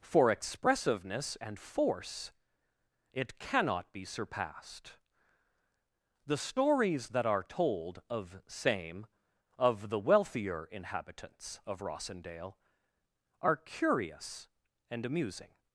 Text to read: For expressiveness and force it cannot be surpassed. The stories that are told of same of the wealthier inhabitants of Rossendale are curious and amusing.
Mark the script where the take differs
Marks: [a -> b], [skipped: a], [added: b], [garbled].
For expressiveness and force it cannot be surpassed. The stories that are told of same of the wealthier inhabitants of Rossendale are curious and amusing.